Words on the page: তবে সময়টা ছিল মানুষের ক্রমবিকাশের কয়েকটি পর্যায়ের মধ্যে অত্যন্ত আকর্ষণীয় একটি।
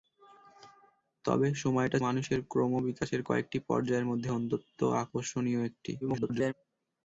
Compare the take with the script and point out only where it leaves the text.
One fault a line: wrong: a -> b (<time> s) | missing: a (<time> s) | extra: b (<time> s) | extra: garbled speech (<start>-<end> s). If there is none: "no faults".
missing: ছিল (2.0 s)
extra: garbled speech (6.0-6.5 s)